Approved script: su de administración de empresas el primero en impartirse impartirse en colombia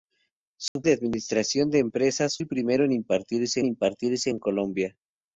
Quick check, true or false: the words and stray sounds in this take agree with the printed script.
false